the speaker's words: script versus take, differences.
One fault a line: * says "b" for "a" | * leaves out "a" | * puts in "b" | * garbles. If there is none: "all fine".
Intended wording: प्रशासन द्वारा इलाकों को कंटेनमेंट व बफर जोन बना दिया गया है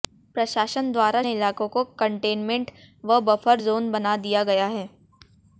all fine